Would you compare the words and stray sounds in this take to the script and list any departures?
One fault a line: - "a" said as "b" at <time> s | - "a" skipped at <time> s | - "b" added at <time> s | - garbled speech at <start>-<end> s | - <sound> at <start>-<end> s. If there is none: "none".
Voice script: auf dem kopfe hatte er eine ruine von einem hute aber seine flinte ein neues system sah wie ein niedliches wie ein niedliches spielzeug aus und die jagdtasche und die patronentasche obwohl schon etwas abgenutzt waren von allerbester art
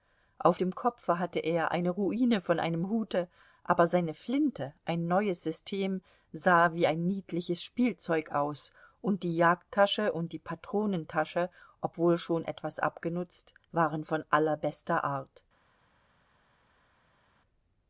- "wie ein niedliches" skipped at 7.6 s